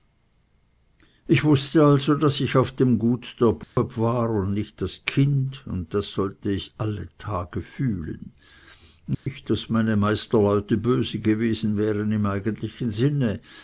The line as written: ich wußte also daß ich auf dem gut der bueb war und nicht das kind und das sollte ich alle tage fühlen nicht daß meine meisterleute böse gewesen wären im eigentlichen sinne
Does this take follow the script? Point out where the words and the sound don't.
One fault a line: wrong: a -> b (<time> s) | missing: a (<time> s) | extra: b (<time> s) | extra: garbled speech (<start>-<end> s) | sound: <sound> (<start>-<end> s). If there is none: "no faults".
sound: dropout (3.6-3.8 s)
sound: dropout (9.1-9.3 s)